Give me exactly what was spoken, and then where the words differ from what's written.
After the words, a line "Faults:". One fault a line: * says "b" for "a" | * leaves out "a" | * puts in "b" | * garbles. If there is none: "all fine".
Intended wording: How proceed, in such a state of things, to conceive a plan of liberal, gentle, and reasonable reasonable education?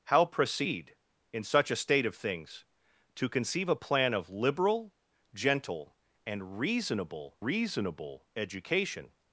How proceed, in such a state of things, to conceive a plan of liberal, gentle, and reasonable reasonable education?
Faults:
all fine